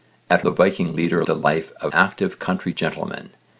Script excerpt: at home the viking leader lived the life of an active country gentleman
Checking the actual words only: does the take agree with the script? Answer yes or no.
no